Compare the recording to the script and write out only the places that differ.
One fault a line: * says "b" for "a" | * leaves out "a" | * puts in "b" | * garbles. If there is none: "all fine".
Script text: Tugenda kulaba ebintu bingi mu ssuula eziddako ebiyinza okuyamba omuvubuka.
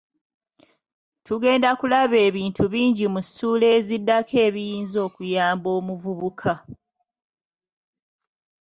all fine